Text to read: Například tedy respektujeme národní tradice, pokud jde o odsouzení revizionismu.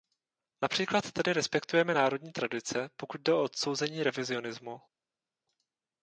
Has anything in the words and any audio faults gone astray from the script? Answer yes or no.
no